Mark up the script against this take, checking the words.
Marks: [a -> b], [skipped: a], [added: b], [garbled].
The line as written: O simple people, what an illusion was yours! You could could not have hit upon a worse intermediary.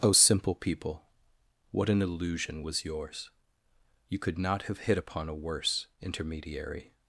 O simple people, what an illusion was yours! You could [skipped: could] not have hit upon a worse intermediary.